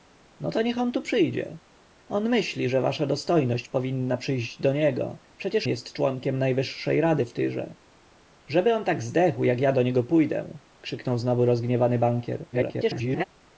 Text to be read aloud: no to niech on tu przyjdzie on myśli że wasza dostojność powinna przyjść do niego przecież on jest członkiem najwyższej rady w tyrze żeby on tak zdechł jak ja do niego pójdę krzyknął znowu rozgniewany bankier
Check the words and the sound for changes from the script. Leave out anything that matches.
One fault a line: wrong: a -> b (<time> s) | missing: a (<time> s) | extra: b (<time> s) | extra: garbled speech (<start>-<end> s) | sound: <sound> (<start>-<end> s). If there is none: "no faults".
missing: on (5.7 s)
extra: garbled speech (12.5-13.2 s)